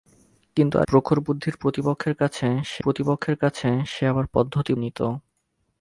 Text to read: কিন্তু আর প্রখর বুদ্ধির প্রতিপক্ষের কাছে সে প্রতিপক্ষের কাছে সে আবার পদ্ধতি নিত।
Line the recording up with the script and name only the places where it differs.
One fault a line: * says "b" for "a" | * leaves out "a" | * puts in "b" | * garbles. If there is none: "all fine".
all fine